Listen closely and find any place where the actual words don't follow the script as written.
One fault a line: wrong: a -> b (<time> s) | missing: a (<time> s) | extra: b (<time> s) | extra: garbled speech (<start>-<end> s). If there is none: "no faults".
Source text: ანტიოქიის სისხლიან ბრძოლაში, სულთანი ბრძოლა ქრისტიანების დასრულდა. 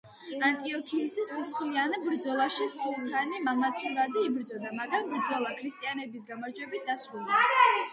extra: მამაცურად იბრძოდა მაგრამ (3.5 s)
extra: გამარჯვებით (6.4 s)